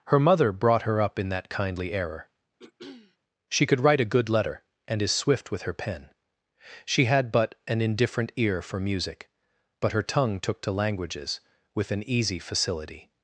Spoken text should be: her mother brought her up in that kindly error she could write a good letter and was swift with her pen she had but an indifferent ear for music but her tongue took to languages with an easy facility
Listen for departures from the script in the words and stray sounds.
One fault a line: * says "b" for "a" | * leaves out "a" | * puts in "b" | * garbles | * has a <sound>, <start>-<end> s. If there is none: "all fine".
* has a throat clearing, 2.6-3.2 s
* says "is" for "was"